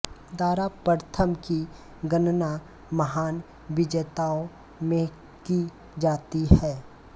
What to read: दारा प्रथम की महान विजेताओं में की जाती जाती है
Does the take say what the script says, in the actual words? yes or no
no